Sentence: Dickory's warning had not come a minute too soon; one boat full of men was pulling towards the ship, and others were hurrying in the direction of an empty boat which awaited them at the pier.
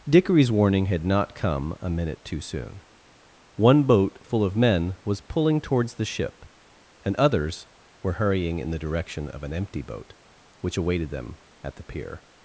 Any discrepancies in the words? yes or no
no